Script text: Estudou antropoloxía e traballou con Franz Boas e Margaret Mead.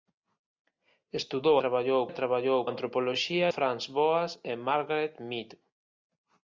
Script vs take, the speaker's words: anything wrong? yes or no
yes